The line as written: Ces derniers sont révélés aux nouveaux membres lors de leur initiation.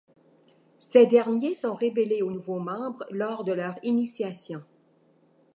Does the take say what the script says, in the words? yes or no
yes